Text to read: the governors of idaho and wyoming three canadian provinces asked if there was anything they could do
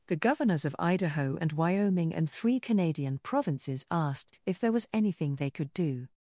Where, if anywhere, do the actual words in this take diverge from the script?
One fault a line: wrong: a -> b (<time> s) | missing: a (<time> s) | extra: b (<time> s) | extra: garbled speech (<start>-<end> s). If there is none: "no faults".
extra: and (2.1 s)